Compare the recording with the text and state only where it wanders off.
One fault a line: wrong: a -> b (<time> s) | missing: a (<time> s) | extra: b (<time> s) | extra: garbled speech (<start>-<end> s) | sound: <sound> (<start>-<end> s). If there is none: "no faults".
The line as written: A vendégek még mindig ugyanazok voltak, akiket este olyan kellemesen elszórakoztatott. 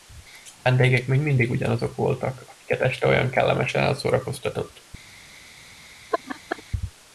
sound: laugh (6.1-6.6 s)